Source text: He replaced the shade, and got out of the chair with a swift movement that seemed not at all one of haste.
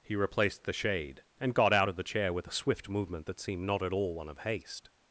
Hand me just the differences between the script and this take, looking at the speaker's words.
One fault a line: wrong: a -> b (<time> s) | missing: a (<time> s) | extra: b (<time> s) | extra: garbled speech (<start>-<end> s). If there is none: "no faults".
no faults